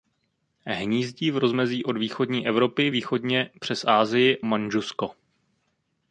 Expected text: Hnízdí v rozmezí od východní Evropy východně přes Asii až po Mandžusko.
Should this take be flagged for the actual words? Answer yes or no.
yes